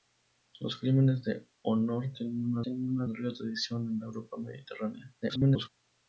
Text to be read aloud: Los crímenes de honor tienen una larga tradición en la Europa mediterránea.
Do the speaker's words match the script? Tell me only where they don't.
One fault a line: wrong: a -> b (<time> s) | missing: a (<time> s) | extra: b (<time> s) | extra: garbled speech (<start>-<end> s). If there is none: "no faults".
extra: tienen una (2.6 s)
extra: garbled speech (5.2-5.7 s)